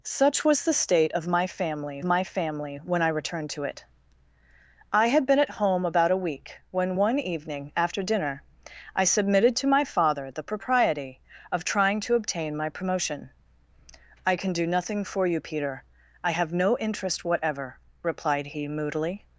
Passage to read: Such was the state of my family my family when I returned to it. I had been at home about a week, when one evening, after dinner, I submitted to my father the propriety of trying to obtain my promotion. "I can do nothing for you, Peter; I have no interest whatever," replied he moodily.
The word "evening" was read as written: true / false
true